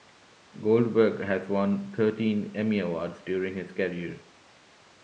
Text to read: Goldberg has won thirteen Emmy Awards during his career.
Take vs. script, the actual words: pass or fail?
pass